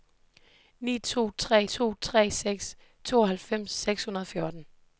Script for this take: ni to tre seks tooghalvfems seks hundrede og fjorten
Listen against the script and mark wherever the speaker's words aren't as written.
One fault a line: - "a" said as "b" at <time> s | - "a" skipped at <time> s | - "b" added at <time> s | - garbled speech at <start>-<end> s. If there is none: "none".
- "to tre" added at 1.6 s